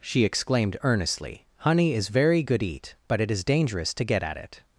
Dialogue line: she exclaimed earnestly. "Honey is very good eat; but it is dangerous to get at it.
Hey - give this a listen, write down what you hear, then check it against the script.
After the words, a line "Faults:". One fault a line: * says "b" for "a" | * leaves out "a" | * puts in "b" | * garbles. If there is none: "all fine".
she exclaimed earnestly. "Honey is very good eat; but it is dangerous to get at it.
Faults:
all fine